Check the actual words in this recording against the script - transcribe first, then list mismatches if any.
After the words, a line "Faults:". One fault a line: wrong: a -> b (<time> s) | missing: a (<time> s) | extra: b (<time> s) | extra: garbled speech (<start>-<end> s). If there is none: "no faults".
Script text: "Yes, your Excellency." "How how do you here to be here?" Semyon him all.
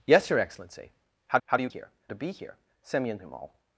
"Yes, your Excellency." "How how do you here to be here?" Semyon him all.
Faults:
no faults